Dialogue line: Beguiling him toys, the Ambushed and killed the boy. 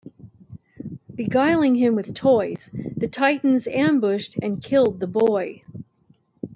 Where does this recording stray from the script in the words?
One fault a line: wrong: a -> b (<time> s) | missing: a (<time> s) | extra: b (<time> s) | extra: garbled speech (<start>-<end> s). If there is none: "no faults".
extra: with (1.9 s)
extra: Titans (3.1 s)